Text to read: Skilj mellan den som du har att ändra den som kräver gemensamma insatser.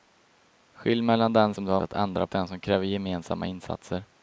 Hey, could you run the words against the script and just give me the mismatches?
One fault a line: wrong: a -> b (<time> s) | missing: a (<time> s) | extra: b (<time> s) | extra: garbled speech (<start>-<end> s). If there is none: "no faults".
no faults